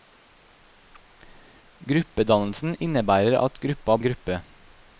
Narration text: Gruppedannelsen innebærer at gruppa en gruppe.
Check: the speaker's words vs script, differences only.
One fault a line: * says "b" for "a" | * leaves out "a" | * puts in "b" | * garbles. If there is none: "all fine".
all fine